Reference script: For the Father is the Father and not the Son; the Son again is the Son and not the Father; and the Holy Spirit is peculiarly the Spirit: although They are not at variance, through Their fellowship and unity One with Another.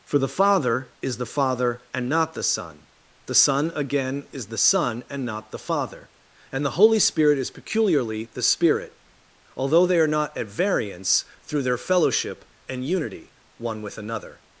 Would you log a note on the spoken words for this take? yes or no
no